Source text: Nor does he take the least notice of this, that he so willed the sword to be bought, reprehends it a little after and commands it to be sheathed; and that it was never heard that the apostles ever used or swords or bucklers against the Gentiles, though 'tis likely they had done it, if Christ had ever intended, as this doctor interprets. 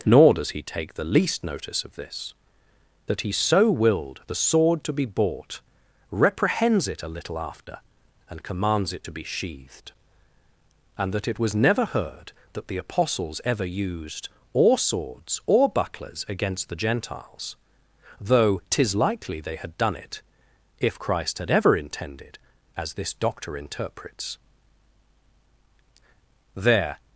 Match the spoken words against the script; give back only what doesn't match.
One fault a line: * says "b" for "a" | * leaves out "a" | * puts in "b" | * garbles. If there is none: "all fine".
* puts in "There"